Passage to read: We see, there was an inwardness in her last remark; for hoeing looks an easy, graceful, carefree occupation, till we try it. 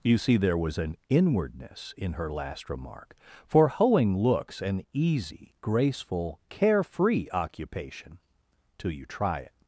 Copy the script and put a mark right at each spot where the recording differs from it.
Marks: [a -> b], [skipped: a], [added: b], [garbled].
[We -> You] see, there was an inwardness in her last remark; for hoeing looks an easy, graceful, carefree occupation, till [we -> you] try it.